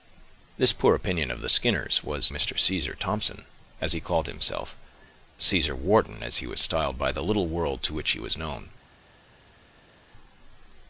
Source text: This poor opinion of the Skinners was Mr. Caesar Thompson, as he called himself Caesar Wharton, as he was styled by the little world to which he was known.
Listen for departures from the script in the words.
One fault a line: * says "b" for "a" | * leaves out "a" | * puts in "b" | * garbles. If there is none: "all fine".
all fine